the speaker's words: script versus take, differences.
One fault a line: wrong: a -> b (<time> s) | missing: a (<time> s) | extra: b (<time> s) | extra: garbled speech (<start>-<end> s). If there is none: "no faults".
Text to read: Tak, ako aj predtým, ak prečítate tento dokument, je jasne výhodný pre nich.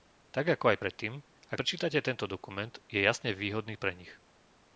no faults